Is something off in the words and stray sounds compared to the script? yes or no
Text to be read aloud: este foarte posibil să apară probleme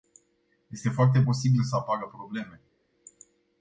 no